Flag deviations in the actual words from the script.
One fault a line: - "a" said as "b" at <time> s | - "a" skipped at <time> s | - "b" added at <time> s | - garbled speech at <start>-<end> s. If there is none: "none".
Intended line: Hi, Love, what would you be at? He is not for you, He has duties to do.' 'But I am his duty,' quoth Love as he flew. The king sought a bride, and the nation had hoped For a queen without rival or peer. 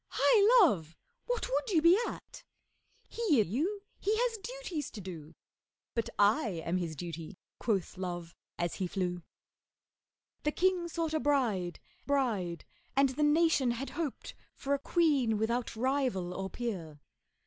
- "is not for" skipped at 3.4 s
- "bride" added at 12.0 s